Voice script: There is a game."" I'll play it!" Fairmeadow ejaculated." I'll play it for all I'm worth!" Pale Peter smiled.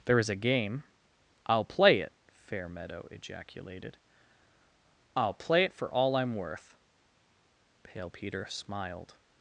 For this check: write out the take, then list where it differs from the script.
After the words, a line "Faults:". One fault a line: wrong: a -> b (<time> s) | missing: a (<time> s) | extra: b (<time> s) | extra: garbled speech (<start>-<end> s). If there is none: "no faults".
There is a game."" I'll play it!" Fairmeadow ejaculated." I'll play it for all I'm worth!" Pale Peter smiled.
Faults:
no faults